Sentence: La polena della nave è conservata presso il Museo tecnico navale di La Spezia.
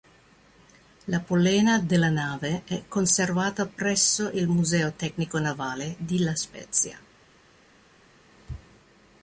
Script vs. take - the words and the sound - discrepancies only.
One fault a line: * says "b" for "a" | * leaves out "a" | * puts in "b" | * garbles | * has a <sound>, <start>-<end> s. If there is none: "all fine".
all fine